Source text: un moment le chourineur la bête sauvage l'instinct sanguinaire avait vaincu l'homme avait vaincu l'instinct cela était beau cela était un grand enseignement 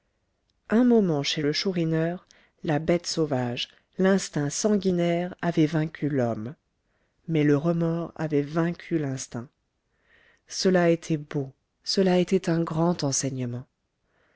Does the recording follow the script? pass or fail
fail